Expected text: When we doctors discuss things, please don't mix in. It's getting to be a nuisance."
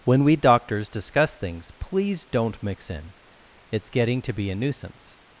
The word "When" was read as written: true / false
true